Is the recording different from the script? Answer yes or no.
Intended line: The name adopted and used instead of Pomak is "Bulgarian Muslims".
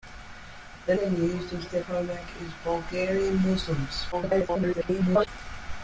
yes